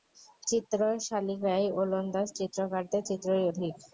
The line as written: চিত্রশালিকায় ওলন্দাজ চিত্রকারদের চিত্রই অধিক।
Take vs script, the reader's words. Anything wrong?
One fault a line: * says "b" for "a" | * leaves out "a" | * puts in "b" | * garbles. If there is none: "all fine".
all fine